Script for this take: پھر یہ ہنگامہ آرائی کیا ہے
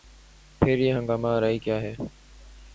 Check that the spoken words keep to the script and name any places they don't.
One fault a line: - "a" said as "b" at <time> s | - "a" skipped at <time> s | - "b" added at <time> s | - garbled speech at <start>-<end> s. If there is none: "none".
none